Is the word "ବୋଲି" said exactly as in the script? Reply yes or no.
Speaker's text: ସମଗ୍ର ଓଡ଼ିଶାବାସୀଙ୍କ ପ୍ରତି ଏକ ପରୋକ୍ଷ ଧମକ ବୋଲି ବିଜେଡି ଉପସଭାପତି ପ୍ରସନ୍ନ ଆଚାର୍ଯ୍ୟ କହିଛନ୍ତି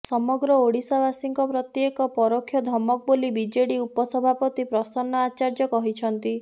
yes